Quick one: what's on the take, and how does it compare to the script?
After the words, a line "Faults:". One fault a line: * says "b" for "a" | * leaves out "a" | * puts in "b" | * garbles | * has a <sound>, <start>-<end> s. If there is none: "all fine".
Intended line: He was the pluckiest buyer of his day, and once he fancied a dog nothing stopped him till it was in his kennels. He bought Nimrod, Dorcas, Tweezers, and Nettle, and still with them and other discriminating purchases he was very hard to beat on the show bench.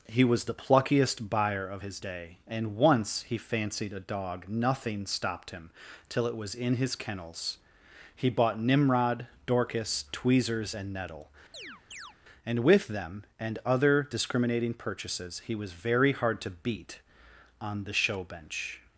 He was the pluckiest buyer of his day, and once he fancied a dog nothing stopped him till it was in his kennels. He bought Nimrod, Dorcas, Tweezers, and Nettle, and with them and other discriminating purchases he was very hard to beat on the show bench.
Faults:
* has a chirp, 11.5-12.2 s
* leaves out "still"